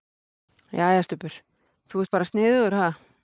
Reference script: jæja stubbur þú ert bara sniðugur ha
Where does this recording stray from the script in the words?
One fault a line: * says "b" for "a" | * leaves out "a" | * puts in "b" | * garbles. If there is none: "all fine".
all fine